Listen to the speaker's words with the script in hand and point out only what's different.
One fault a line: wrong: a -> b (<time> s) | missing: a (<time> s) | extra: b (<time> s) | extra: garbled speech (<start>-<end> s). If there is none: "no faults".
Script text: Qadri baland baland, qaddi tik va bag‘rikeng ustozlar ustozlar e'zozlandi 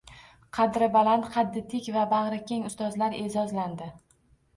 missing: baland (1.3 s)
missing: ustozlar (3.2 s)